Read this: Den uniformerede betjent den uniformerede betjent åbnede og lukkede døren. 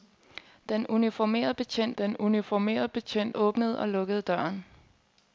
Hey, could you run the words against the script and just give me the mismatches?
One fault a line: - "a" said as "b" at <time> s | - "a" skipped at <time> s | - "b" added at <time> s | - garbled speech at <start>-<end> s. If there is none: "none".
none